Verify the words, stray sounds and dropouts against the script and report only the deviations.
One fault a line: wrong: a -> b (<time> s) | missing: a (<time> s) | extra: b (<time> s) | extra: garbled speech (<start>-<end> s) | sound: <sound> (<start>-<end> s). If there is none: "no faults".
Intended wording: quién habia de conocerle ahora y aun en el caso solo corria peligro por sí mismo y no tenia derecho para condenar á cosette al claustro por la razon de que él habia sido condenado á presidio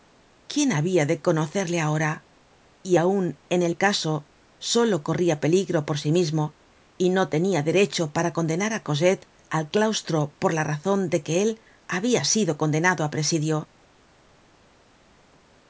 no faults